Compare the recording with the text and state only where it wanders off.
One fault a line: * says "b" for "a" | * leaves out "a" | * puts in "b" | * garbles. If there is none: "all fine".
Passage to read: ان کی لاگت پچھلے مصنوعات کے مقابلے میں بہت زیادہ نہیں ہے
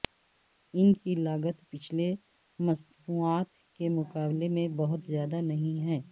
all fine